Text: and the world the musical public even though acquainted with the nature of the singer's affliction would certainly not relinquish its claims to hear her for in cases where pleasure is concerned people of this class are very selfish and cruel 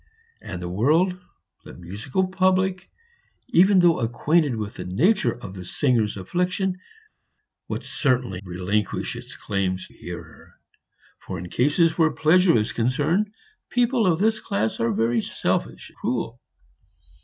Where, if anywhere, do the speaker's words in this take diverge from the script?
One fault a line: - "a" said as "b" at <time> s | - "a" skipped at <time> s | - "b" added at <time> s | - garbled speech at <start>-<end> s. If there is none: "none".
- "not" skipped at 8.4 s
- "to" skipped at 9.9 s
- "and" skipped at 15.9 s